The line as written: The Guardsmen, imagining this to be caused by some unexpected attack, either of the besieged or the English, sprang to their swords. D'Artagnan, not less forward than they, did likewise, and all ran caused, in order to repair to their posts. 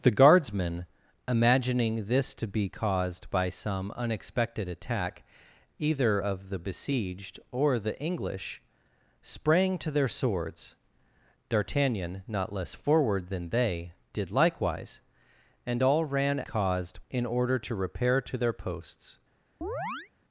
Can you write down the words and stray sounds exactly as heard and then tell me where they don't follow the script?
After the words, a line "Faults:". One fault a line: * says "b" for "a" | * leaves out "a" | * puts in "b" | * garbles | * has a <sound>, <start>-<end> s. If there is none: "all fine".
The Guardsmen, imagining this to be caused by some unexpected attack, either of the besieged or the English, sprang to their swords. D'Artagnan, not less forward than they, did likewise, and all ran caused, in order to repair to their posts.
Faults:
* has a chirp, 19.6-20.1 s